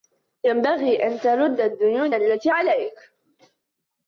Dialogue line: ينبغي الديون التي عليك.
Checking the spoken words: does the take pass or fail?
fail